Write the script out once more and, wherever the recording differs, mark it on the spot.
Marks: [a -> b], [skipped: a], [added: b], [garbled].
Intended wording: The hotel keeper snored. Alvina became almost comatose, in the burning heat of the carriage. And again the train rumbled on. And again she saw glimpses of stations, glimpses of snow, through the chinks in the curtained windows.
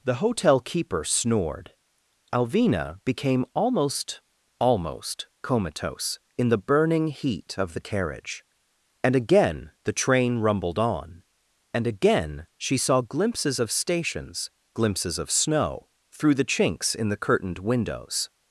The hotel keeper snored. Alvina became almost [added: almost] comatose, in the burning heat of the carriage. And again the train rumbled on. And again she saw glimpses of stations, glimpses of snow, through the chinks in the curtained windows.